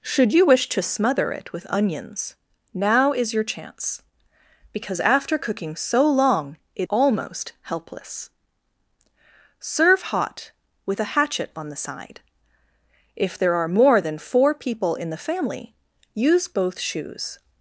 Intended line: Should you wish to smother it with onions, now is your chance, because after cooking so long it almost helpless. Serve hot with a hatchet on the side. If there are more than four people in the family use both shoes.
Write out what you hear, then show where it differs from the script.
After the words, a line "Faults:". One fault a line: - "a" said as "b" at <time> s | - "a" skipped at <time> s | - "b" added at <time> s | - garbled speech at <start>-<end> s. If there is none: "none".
Should you wish to smother it with onions, now is your chance, because after cooking so long it almost helpless. Serve hot with a hatchet on the side. If there are more than four people in the family use both shoes.
Faults:
none